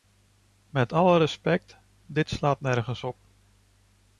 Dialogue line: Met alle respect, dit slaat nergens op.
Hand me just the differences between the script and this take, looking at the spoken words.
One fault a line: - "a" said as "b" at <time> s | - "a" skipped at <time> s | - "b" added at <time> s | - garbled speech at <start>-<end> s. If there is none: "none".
none